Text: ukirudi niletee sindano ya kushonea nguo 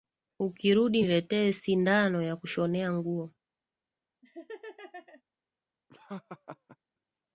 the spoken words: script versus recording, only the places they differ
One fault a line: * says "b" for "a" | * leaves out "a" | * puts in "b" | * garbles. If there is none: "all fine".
all fine